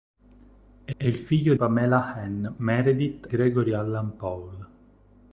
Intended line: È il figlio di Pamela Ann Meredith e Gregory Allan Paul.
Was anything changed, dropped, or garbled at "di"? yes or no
yes